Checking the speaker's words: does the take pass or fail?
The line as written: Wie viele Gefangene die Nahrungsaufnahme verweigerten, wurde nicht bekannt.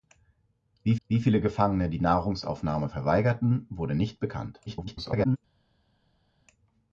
fail